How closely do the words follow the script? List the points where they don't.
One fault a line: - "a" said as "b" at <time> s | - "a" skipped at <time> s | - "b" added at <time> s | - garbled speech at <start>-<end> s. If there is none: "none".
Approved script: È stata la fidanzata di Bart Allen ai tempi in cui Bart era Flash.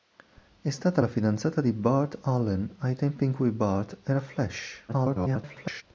- garbled speech at 4.9-5.8 s